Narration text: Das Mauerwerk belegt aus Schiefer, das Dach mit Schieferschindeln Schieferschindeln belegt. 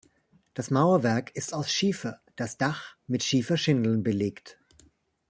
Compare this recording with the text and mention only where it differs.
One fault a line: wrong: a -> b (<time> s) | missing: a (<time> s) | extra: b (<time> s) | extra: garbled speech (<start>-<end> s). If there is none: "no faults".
wrong: belegt -> ist (1.4 s)
missing: Schieferschindeln (4.0 s)